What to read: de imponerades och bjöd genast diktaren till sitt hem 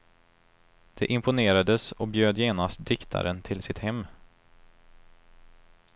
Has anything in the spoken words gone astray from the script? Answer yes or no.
no